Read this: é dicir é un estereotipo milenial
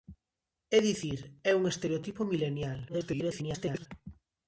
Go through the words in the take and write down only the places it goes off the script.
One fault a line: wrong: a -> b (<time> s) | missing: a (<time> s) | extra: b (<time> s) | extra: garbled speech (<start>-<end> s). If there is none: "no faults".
extra: garbled speech (2.9-3.9 s)